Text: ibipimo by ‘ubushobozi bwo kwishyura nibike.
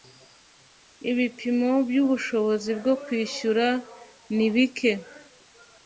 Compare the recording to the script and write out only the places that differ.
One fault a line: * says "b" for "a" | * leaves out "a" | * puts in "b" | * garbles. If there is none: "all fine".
all fine